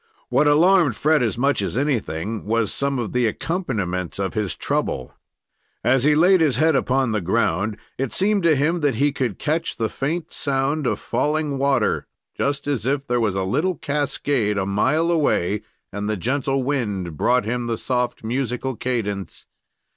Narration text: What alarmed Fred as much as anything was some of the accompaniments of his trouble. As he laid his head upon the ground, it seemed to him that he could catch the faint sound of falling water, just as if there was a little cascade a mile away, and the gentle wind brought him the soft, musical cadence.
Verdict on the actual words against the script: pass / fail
pass